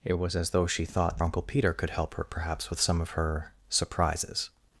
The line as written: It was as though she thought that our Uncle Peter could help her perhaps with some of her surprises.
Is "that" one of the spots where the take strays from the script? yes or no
yes